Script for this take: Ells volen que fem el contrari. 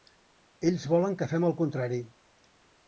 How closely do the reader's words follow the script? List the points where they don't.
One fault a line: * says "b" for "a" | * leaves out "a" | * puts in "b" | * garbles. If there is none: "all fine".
all fine